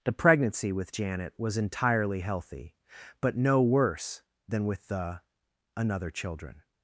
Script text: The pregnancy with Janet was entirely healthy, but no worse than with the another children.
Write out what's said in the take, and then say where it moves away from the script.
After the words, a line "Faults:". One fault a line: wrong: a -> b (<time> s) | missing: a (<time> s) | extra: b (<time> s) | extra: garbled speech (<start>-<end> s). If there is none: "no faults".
The pregnancy with Janet was entirely healthy, but no worse than with the another children.
Faults:
no faults